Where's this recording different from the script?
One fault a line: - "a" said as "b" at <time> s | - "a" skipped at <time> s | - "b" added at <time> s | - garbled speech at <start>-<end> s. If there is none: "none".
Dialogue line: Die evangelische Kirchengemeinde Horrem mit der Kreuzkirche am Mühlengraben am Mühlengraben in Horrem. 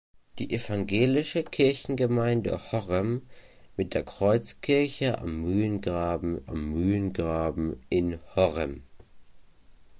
none